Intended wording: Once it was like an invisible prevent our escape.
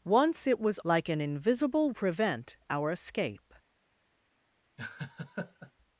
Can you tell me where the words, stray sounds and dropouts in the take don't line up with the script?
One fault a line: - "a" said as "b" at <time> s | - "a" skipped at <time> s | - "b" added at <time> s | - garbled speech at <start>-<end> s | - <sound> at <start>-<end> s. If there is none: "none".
- laugh at 4.8-5.7 s